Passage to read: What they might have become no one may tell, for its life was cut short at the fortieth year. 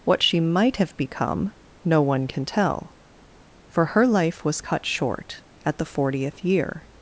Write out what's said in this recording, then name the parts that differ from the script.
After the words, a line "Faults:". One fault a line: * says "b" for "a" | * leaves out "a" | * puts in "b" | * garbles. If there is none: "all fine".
What she might have become no one can tell, for her life was cut short at the fortieth year.
Faults:
* says "she" for "they"
* says "can" for "may"
* says "her" for "its"